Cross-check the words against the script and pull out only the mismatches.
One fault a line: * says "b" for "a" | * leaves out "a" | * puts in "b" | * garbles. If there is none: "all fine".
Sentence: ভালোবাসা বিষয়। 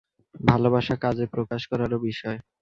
* puts in "কাজে প্রকাশ করারও"